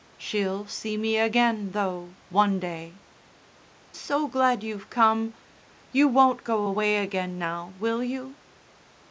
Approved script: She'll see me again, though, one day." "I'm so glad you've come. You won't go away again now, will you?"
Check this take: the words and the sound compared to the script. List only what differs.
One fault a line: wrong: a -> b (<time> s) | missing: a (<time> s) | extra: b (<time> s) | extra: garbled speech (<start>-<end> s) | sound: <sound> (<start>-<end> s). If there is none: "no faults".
missing: I'm (3.0 s)